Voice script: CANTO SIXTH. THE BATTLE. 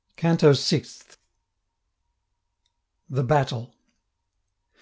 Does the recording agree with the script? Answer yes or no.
yes